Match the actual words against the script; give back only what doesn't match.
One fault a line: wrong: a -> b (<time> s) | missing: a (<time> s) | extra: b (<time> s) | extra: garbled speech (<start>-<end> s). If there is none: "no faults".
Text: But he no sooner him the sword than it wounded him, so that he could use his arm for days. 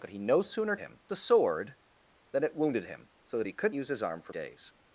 no faults